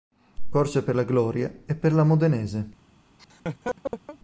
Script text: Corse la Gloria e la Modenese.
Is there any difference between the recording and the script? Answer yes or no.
yes